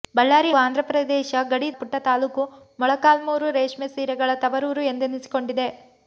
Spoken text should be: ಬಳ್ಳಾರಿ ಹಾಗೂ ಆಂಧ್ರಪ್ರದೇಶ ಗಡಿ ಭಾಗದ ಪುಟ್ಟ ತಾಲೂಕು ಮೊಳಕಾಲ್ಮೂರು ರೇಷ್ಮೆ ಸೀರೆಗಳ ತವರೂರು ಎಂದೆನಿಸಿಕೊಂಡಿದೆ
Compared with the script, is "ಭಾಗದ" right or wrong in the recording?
wrong